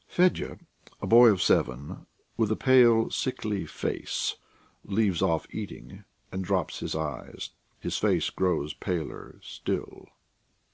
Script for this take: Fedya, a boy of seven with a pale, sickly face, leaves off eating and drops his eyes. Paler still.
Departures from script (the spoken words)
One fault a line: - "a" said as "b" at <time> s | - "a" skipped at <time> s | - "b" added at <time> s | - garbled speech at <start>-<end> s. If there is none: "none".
- "His face grows" added at 7.8 s